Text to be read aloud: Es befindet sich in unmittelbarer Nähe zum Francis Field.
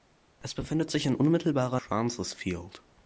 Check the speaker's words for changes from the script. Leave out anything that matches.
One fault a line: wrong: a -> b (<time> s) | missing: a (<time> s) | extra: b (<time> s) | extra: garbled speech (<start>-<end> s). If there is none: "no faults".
missing: Nähe zum (1.8 s)